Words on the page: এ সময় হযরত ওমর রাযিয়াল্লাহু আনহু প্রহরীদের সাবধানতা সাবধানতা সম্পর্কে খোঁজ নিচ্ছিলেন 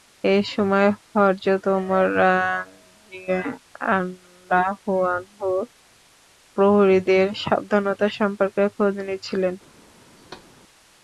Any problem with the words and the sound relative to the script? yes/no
yes